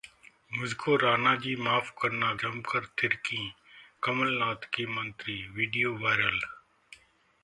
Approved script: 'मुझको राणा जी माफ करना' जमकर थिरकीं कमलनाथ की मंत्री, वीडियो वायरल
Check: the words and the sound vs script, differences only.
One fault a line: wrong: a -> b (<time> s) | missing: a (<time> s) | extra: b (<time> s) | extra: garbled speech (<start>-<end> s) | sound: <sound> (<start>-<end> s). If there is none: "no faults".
no faults